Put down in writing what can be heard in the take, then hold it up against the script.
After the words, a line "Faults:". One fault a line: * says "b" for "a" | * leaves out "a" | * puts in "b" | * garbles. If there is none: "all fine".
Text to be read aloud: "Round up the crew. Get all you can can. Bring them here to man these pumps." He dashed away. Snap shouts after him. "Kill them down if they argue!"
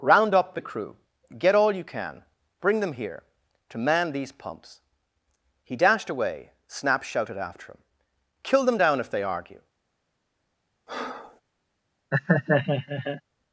"Round up the crew. Get all you can. Bring them here to man these pumps." He dashed away. Snap shouted after him. "Kill them down if they argue!"
Faults:
* leaves out "can"
* says "shouted" for "shouts"